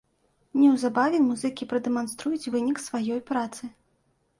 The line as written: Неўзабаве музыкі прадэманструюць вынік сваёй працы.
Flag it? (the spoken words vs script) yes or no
no